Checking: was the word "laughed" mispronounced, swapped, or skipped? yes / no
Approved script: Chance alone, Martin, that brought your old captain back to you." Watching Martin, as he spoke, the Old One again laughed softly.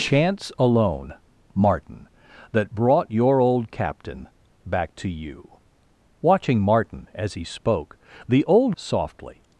yes